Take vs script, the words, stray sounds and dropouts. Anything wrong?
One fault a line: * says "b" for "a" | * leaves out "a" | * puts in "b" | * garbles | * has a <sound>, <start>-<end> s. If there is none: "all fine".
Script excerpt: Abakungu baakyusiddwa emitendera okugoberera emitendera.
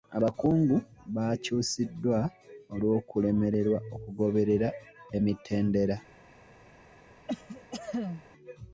* says "olw'okulemererwa" for "emitendera"
* has a cough, 7.3-8.2 s